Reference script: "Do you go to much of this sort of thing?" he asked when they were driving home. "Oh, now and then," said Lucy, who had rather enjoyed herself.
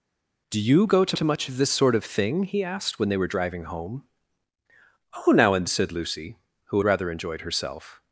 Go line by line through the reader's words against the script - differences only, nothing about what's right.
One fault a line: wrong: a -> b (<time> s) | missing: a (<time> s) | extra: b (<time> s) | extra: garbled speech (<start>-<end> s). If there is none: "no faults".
extra: to (1.1 s)
missing: then (5.7 s)
missing: had (6.8 s)